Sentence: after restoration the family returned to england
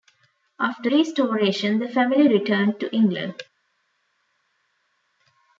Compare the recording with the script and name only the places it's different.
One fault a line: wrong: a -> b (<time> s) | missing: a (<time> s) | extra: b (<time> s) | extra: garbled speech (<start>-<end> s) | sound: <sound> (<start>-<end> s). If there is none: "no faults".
no faults